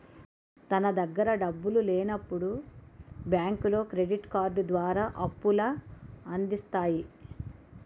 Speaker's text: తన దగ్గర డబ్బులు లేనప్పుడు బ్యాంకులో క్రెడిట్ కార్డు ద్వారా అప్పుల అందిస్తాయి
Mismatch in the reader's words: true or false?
false